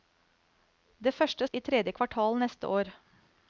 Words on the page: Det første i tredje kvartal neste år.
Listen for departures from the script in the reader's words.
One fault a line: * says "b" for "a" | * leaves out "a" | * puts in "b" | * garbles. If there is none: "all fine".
all fine